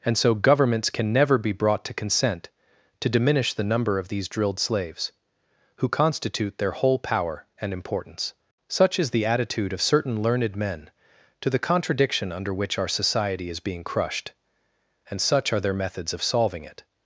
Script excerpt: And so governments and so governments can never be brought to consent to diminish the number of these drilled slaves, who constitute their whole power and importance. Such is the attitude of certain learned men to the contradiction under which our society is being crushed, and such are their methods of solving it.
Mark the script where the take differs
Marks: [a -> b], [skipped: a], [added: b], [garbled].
And so governments [skipped: and so governments] can never be brought to consent to diminish the number of these drilled slaves, who constitute their whole power and importance. Such is the attitude of certain learned men to the contradiction under which our society is being crushed, and such are their methods of solving it.